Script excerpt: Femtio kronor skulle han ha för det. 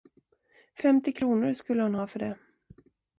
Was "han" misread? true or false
true